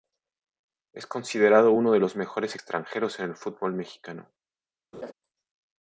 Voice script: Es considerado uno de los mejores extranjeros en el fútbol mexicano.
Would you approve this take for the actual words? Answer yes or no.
yes